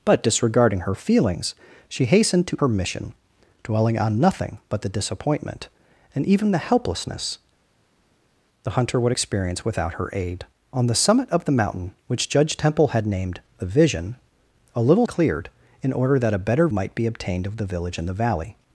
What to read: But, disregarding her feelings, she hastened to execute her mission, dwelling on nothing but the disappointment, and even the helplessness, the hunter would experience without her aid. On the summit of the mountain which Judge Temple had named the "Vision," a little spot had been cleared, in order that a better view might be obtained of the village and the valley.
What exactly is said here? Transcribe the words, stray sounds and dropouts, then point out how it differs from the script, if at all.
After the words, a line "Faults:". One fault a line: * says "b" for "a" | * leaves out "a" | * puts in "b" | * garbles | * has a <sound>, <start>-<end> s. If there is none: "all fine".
But, disregarding her feelings, she hastened to her mission, dwelling on nothing but the disappointment, and even the helplessness, the hunter would experience without her aid. On the summit of the mountain which Judge Temple had named the "Vision," a little cleared, in order that a better might be obtained of the village and the valley.
Faults:
* leaves out "execute"
* leaves out "spot had been"
* leaves out "view"